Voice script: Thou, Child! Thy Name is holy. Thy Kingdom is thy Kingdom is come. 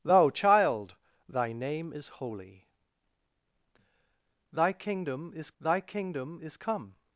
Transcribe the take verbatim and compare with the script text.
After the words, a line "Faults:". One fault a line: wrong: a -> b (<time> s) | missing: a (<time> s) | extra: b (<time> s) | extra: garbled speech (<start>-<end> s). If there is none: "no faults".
Thou, Child! Thy Name is holy. Thy Kingdom is thy Kingdom is come.
Faults:
no faults